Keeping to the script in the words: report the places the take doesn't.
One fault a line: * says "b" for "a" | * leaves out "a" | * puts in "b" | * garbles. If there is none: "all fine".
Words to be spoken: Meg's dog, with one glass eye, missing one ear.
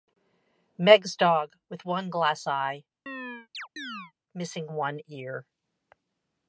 all fine